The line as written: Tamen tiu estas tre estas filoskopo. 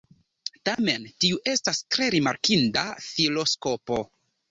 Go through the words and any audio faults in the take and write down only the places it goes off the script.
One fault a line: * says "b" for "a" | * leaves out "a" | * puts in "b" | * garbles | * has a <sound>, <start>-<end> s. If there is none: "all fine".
* has a dropout, 0.7-0.8 s
* says "rimarkinda" for "estas"